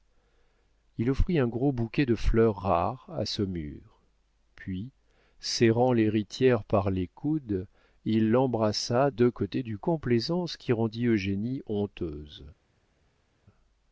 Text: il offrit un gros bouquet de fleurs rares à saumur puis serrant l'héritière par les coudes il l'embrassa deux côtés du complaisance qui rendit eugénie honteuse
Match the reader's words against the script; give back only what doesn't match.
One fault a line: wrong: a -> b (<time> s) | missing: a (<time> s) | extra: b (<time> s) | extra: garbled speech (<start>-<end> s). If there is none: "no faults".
no faults